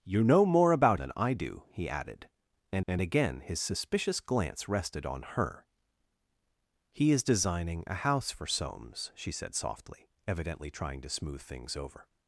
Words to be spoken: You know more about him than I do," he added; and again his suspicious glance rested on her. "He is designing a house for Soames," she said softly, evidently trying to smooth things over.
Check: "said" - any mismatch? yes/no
no